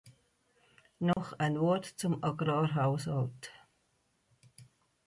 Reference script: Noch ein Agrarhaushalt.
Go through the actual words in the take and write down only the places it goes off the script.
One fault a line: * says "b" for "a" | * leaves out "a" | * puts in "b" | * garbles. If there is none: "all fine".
* puts in "Wort zum"